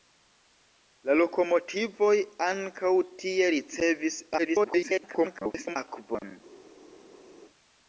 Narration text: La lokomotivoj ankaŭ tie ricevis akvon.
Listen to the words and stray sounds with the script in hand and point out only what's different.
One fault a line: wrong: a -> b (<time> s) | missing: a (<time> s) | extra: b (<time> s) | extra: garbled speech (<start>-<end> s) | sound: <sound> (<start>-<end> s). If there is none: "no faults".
extra: garbled speech (4.4-5.8 s)